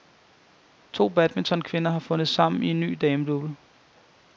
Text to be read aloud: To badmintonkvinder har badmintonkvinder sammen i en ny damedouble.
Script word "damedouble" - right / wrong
right